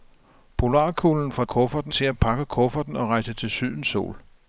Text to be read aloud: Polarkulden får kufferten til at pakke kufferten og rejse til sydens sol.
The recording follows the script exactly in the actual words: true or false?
true